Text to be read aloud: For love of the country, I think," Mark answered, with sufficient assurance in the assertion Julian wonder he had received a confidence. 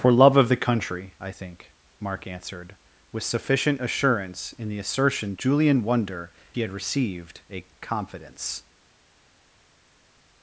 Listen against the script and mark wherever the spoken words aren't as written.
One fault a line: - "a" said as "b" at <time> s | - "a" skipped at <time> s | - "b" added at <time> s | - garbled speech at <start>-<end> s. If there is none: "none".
none